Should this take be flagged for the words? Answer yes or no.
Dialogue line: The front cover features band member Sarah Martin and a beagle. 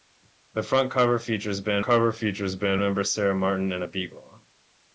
yes